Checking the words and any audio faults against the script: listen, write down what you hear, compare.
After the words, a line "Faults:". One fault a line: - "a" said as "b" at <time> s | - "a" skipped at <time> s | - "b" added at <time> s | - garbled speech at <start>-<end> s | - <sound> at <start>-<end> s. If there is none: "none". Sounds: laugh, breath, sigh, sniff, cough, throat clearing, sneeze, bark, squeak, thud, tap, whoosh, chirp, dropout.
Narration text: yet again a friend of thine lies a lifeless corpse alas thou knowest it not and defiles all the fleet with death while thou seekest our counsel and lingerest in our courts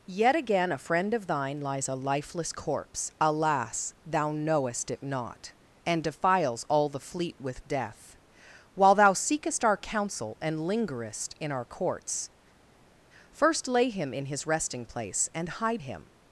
yet again a friend of thine lies a lifeless corpse alas thou knowest it not and defiles all the fleet with death while thou seekest our counsel and lingerest in our courts first lay him in his resting place and hide him
Faults:
- "first lay him in his resting place and hide him" added at 13.3 s